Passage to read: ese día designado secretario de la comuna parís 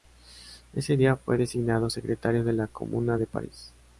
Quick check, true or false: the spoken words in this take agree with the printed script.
false